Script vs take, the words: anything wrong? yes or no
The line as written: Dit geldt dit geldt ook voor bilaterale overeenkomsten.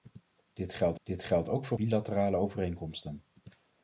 no